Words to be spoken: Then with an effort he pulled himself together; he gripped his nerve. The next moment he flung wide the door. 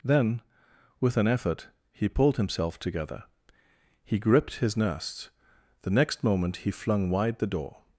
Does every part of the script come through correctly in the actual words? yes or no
no